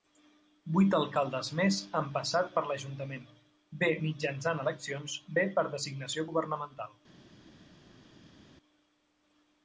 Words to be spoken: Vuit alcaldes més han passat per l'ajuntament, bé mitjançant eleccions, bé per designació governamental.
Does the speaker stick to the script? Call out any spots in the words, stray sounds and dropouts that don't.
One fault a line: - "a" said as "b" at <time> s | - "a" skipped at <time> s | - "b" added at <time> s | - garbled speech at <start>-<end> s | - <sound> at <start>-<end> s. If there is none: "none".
none